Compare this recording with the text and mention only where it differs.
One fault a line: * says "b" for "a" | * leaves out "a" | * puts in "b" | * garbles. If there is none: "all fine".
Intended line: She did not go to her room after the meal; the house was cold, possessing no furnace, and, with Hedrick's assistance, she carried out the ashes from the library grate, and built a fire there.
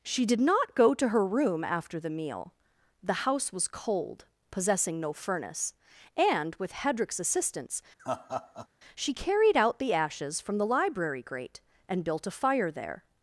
all fine